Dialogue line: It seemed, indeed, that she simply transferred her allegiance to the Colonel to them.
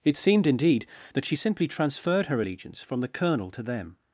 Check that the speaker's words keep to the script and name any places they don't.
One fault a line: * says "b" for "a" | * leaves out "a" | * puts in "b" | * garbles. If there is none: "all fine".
* says "from" for "to"